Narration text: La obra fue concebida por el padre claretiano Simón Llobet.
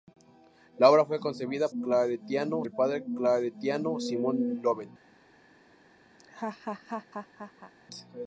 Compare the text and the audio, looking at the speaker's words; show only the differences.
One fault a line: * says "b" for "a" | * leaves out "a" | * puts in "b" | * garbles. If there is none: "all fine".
* says "claretiano" for "por"